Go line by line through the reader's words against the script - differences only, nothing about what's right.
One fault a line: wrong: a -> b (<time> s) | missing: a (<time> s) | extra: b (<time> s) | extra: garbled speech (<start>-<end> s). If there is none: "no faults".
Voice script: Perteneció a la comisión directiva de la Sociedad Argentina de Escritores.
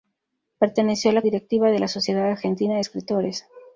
missing: comisión (1.2 s)